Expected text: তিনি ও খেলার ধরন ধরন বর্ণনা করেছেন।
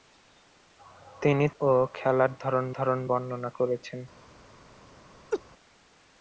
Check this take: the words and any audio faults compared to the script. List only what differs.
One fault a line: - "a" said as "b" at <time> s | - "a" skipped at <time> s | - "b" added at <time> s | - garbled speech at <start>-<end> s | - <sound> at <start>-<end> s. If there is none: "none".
- laugh at 5.3-5.4 s